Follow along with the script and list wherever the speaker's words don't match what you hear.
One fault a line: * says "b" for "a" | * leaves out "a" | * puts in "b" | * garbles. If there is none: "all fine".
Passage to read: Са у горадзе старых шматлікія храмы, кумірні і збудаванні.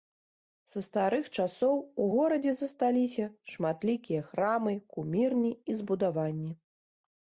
* puts in "старых часоў"
* says "засталіся" for "старых"